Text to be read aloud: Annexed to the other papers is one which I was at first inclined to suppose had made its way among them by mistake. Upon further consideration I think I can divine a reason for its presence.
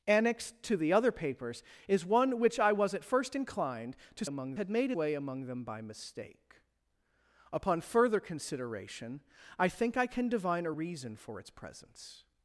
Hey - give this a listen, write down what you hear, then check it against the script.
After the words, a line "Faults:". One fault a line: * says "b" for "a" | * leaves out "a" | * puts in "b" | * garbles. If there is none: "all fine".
Annexed to the other papers is one which I was at first inclined to among had made way among them by mistake. Upon further consideration I think I can divine a reason for its presence.
Faults:
* says "among" for "suppose"
* leaves out "its"